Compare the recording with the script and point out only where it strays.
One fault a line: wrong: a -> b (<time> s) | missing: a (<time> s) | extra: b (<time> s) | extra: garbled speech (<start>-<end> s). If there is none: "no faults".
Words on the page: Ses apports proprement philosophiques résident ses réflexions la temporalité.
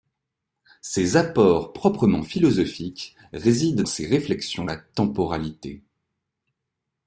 no faults